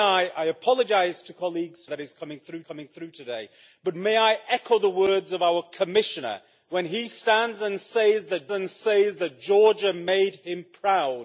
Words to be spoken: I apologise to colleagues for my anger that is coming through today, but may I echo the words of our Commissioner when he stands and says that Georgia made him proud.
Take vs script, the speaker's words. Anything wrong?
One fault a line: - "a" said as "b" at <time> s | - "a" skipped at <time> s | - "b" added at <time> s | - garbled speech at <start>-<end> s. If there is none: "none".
- "for my anger" skipped at 1.9 s
- "coming through" added at 2.6 s
- "and says that" added at 8.5 s